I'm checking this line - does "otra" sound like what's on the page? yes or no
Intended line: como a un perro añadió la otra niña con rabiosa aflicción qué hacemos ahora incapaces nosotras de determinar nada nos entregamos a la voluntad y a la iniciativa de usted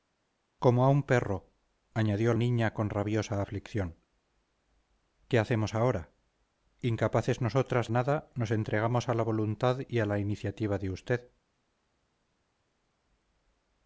no